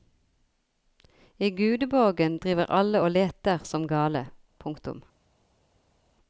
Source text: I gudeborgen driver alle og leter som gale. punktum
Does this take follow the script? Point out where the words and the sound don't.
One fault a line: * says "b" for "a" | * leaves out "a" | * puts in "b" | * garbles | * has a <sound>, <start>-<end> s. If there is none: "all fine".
all fine